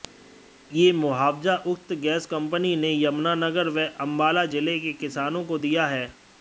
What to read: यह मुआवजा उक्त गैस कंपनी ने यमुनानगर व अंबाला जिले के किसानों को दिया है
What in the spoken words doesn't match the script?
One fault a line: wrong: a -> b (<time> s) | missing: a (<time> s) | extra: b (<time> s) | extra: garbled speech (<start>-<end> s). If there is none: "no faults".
no faults